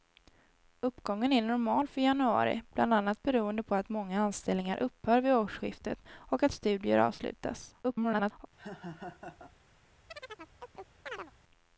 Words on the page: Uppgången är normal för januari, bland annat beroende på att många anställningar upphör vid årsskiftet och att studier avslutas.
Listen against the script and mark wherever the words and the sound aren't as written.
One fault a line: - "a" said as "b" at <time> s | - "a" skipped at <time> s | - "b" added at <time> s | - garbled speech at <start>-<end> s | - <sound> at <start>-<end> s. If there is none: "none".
- garbled speech at 7.8-8.5 s
- laugh at 8.6-9.5 s
- chirp at 10.1-11.3 s